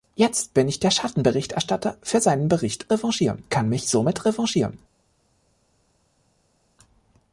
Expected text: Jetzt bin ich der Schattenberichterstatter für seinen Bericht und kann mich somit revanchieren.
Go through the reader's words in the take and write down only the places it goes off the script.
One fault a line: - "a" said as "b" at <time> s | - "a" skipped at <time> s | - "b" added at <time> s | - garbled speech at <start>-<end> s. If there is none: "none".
- "und" said as "revanchieren" at 2.9 s